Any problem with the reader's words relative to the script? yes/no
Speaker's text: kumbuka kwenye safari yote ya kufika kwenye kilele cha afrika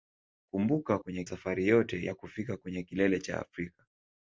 no